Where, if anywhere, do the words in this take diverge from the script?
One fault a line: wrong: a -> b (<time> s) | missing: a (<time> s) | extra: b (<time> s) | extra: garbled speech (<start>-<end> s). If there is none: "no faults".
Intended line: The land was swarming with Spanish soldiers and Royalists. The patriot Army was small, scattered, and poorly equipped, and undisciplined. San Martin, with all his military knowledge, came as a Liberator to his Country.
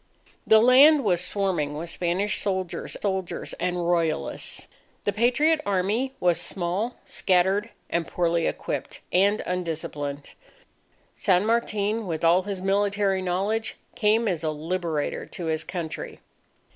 extra: soldiers (3.0 s)